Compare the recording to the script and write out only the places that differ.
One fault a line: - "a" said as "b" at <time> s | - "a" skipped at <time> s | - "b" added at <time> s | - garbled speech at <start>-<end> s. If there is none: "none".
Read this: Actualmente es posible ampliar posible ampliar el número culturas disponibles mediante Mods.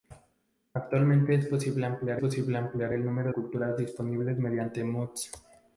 none